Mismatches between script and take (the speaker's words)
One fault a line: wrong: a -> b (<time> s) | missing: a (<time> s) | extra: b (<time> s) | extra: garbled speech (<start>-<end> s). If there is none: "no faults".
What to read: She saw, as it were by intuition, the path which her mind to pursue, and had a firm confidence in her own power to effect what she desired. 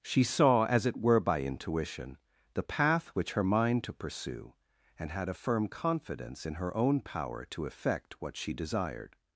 no faults